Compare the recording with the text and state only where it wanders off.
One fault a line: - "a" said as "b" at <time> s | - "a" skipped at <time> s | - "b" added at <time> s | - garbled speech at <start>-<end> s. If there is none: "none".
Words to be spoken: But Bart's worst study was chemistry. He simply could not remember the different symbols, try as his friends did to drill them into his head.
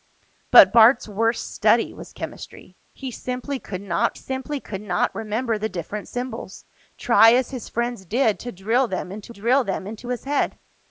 - "simply could not" added at 4.1 s
- "drill them into" added at 9.3 s